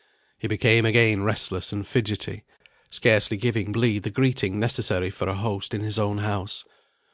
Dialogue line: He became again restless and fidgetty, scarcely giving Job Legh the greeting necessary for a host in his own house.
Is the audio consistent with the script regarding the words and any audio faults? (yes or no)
no